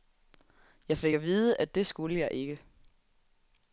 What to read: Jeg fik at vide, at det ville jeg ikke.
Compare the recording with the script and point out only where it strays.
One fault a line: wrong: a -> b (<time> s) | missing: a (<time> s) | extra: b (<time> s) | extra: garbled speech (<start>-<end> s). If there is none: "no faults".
wrong: ville -> skulle (1.9 s)